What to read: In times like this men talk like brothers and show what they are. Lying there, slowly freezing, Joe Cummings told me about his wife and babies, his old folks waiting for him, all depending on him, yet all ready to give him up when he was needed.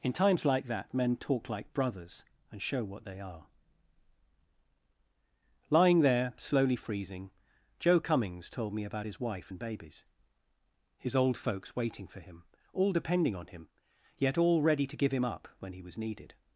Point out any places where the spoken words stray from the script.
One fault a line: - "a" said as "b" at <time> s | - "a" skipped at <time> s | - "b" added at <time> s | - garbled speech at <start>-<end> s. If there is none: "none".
- "this" said as "that" at 0.7 s